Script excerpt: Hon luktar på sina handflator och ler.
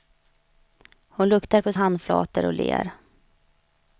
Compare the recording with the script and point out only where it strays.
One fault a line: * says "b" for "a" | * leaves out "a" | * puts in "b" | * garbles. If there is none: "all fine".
* leaves out "sina"